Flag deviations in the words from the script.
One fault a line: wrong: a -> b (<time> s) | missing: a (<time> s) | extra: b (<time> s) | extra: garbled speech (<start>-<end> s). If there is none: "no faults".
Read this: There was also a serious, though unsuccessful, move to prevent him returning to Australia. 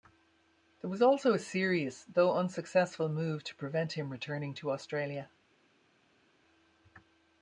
no faults